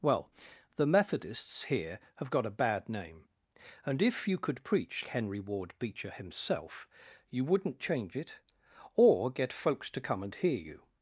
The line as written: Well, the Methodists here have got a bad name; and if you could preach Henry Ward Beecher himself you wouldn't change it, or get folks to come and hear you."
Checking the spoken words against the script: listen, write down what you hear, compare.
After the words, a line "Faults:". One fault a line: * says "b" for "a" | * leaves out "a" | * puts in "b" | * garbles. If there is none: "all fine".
Well, the Methodists here have got a bad name; and if you could preach Henry Ward Beecher himself you wouldn't change it, or get folks to come and hear you."
Faults:
all fine